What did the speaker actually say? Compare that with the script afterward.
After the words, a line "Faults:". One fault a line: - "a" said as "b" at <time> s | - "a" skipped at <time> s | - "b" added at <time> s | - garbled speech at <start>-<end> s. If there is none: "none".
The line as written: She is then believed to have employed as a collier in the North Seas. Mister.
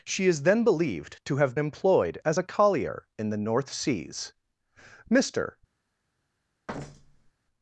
She is then believed to have employed as a collier in the North Seas. Mister.
Faults:
none